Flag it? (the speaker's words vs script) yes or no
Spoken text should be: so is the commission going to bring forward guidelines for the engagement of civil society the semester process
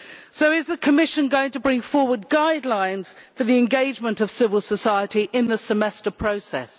yes